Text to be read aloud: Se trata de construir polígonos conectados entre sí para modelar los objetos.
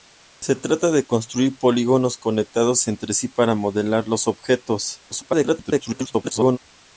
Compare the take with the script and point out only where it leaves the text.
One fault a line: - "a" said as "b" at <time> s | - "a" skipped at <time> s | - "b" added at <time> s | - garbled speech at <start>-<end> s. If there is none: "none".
- garbled speech at 5.1-6.6 s